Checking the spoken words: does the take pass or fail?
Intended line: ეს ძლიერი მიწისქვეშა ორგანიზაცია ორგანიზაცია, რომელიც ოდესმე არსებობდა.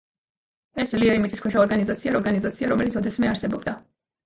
pass